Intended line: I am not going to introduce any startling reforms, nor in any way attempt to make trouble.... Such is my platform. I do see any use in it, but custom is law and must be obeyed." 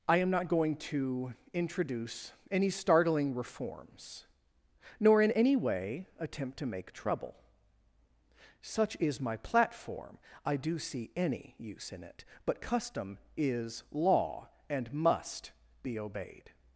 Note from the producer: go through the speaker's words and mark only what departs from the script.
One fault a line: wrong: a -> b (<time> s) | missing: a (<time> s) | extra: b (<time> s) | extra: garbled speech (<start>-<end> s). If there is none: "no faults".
no faults